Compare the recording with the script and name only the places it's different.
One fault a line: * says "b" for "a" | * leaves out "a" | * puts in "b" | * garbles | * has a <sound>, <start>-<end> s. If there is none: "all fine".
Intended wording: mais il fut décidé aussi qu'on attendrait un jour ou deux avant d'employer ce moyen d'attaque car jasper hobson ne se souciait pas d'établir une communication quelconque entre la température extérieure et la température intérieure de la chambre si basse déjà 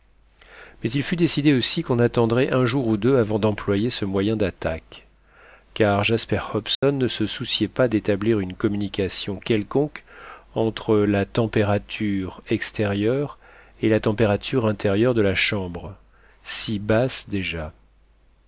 * has a dropout, 6.7-6.8 s